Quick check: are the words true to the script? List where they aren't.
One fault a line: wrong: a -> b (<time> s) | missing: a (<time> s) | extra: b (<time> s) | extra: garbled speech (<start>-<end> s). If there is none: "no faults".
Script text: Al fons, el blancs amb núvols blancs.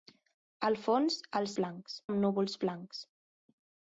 no faults